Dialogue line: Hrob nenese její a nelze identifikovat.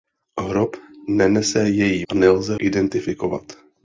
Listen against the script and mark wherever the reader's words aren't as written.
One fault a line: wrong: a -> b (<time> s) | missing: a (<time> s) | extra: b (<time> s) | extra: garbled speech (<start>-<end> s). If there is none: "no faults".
no faults